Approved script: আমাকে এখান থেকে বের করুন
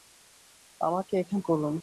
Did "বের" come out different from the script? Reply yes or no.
yes